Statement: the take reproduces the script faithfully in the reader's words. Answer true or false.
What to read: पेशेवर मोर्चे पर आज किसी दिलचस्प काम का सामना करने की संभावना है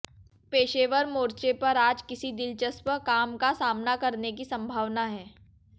true